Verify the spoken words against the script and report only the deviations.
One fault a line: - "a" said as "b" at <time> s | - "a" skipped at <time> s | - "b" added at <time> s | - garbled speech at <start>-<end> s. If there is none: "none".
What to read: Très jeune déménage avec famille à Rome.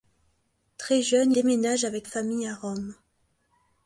none